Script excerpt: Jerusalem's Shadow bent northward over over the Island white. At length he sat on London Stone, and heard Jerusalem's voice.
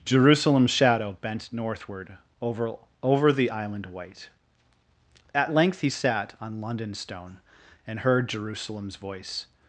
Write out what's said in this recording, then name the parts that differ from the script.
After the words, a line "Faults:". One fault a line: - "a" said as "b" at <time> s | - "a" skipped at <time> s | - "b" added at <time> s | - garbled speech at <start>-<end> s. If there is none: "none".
Jerusalem's Shadow bent northward over over the Island white. At length he sat on London Stone, and heard Jerusalem's voice.
Faults:
none